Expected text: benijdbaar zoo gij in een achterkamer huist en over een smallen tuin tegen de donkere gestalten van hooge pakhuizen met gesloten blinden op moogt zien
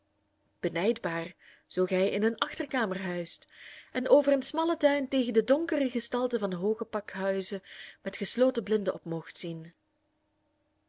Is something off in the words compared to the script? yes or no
no